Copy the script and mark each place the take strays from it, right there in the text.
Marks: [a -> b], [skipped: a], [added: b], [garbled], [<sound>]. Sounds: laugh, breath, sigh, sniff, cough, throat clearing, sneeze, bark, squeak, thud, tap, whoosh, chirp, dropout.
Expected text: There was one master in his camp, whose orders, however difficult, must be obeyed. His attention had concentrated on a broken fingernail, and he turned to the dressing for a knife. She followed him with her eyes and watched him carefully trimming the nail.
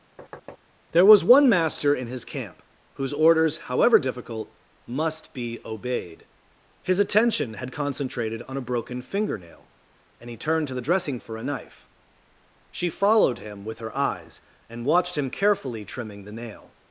[thud] There was one master in his camp, whose orders, however difficult, must be obeyed. His attention had concentrated on a broken fingernail, and he turned to the dressing for a knife. She followed him with her eyes and watched him carefully trimming the nail.